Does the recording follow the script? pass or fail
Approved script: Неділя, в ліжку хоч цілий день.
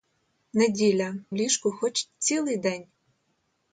pass